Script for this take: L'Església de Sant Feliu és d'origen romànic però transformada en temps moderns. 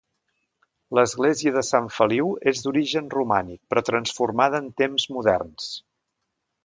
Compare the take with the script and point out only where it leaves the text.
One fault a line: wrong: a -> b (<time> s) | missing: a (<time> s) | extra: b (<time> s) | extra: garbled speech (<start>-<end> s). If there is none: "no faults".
no faults